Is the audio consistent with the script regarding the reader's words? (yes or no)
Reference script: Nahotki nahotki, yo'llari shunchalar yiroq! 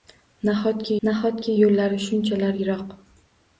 yes